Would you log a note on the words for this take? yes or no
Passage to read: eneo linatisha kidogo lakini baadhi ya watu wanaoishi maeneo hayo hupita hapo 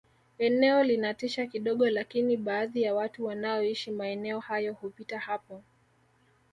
no